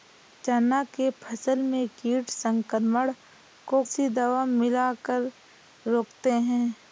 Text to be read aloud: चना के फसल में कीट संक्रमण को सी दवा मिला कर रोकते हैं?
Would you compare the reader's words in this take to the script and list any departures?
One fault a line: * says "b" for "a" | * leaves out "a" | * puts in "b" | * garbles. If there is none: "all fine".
all fine